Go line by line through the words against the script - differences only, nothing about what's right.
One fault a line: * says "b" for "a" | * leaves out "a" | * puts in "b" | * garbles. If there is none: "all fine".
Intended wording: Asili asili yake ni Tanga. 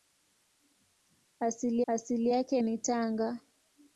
all fine